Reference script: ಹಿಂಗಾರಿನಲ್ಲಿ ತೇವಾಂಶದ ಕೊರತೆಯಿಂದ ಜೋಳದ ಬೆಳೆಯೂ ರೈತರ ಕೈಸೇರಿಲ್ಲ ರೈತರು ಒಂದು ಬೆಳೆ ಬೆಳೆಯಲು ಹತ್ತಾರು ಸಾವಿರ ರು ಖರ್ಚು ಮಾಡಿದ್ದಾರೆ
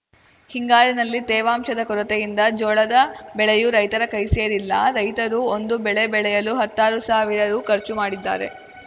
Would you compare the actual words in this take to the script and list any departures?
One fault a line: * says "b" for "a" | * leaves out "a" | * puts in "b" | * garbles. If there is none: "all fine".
all fine